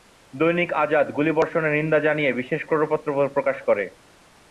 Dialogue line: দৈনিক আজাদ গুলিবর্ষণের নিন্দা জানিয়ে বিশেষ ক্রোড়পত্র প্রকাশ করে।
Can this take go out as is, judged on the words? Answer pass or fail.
pass